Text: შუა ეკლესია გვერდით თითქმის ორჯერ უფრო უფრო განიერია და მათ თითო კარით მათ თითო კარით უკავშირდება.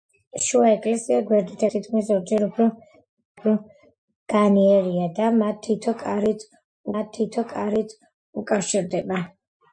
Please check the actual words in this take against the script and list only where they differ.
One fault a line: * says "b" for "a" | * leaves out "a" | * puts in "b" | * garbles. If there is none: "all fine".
all fine